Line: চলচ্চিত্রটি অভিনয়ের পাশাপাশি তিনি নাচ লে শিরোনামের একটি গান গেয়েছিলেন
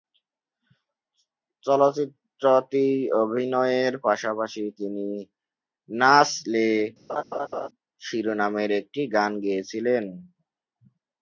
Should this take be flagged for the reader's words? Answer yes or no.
no